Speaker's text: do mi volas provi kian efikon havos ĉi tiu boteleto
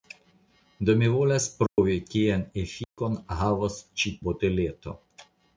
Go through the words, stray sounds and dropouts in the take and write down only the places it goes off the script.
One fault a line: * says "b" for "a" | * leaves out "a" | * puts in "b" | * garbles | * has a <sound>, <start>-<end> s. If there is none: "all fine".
* has a dropout, 1.7-1.8 s
* has a dropout, 2.8-3.0 s
* leaves out "tiu"